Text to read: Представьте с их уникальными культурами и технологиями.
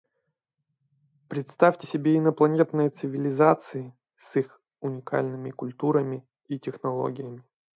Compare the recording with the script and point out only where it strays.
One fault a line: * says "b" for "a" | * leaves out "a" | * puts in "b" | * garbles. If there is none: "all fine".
* puts in "себе инопланетные цивилизации"